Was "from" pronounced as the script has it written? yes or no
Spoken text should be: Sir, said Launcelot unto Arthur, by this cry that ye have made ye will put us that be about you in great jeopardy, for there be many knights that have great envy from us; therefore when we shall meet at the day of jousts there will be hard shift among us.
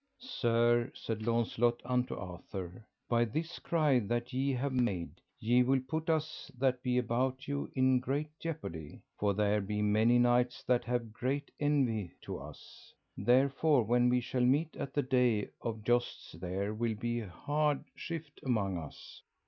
no